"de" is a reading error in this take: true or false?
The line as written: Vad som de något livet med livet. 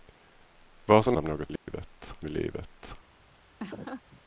false